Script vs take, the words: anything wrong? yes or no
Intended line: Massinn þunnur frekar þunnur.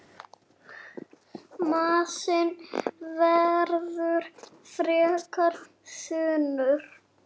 yes